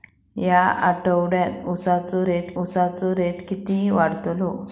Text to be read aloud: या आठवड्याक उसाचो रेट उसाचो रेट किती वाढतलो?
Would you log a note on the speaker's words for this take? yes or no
no